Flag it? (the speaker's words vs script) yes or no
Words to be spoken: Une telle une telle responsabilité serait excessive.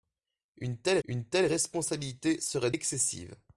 no